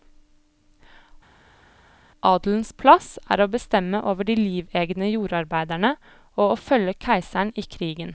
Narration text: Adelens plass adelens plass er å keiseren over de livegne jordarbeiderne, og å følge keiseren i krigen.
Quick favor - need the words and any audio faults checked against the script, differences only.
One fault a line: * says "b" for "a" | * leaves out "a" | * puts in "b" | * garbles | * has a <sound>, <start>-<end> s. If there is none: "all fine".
* leaves out "adelens plass"
* says "bestemme" for "keiseren"